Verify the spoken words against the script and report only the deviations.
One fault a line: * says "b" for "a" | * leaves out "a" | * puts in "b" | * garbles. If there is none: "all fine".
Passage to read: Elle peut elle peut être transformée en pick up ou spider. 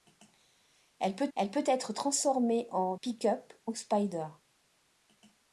all fine